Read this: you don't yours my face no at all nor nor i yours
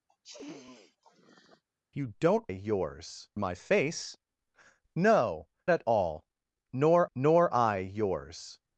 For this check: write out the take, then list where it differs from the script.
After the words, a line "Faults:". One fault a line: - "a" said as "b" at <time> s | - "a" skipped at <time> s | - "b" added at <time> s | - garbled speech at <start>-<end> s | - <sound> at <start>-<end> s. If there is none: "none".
you don't yours my face no at all nor nor i yours
Faults:
- sniff at 0.1-1.6 s